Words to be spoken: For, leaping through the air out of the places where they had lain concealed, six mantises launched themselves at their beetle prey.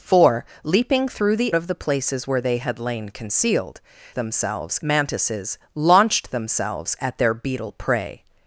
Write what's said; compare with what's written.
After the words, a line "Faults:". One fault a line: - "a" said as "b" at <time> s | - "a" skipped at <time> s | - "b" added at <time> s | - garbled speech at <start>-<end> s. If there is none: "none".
For, leaping through the of the places where they had lain concealed, themselves mantises launched themselves at their beetle prey.
Faults:
- "air out" skipped at 1.6 s
- "six" said as "themselves" at 4.1 s